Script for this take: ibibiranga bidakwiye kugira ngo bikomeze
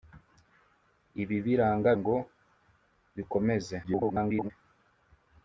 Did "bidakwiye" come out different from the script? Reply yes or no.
yes